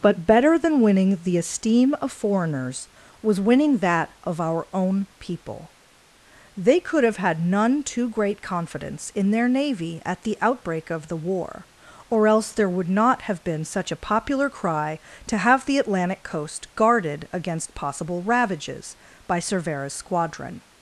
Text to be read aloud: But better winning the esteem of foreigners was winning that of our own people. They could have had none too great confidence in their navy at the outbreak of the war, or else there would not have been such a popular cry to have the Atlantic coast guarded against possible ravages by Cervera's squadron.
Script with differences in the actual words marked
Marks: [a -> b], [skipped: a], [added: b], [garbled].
But better [added: than] winning the esteem of foreigners was winning that of our own people. They could have had none too great confidence in their navy at the outbreak of the war, or else there would not have been such a popular cry to have the Atlantic coast guarded against possible ravages by Cervera's squadron.